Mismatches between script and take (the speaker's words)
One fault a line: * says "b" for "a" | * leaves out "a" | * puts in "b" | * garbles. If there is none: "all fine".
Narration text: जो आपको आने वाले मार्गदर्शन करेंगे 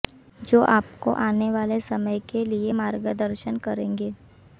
* puts in "समय के लिए"